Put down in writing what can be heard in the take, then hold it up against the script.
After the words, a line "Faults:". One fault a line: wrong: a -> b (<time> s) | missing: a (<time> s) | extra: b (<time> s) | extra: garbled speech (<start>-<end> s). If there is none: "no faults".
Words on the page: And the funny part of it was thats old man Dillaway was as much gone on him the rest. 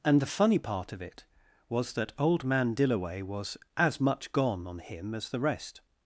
And the funny part of it was that old man Dillaway was as much gone on him as the rest.
Faults:
wrong: thats -> that (1.9 s)
extra: as (5.1 s)